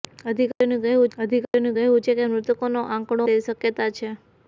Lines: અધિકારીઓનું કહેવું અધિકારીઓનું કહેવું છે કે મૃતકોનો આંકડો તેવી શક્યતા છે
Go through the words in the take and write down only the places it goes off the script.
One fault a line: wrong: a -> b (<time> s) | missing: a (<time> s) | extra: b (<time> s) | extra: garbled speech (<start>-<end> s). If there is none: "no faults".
no faults